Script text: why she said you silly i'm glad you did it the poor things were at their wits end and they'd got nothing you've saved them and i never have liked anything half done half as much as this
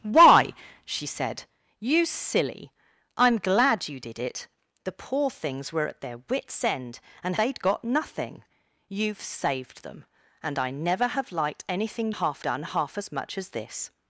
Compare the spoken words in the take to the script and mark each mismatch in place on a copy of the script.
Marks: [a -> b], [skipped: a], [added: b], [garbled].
why she said you silly i'm glad you did it the poor things were at their wits end and they'd got nothing you've saved them and i never have liked anything half done half as much as this